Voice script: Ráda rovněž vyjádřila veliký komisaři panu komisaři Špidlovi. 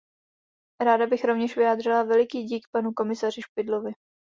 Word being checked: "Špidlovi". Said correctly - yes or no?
yes